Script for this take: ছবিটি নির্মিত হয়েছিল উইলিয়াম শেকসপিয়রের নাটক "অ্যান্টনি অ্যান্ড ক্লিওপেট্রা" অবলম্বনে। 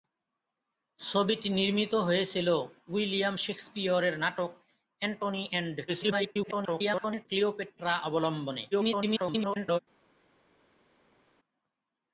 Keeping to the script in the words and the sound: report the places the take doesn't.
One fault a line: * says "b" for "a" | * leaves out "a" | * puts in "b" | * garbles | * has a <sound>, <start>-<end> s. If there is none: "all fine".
* garbles
* garbles